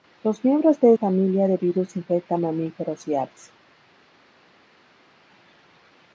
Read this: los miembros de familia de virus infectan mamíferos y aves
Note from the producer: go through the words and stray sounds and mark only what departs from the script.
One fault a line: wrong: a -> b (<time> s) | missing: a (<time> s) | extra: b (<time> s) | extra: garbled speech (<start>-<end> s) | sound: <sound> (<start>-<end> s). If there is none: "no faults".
no faults